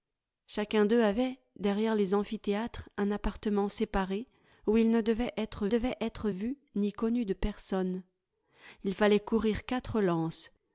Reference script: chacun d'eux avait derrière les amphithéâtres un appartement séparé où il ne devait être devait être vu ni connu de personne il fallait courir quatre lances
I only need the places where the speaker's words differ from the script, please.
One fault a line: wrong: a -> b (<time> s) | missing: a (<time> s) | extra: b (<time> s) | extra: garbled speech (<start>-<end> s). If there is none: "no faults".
no faults